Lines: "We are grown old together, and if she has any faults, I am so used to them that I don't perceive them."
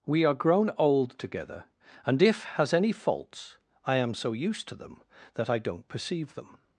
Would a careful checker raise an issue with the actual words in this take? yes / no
yes